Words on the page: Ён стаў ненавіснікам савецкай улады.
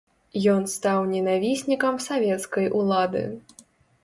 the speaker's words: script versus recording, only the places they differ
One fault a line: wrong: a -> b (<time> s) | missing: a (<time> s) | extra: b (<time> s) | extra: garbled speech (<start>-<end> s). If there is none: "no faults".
no faults